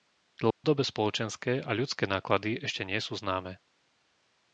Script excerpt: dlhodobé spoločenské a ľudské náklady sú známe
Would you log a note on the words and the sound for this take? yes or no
yes